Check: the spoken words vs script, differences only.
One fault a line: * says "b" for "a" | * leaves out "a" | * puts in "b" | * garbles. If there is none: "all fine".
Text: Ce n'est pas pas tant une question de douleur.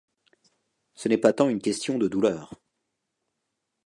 * leaves out "pas"